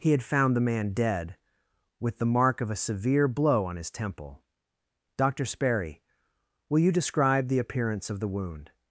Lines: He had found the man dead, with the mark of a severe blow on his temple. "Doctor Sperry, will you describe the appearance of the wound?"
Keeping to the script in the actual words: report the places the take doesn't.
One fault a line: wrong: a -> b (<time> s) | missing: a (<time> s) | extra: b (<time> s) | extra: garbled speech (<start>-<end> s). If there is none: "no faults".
no faults